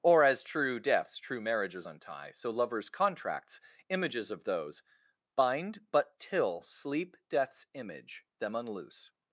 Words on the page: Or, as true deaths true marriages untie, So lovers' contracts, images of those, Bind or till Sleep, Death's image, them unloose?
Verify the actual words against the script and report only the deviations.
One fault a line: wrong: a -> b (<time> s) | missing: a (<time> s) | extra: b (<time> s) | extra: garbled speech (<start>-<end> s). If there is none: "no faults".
wrong: or -> but (5.9 s)